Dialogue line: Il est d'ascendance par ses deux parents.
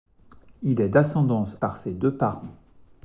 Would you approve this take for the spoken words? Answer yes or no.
yes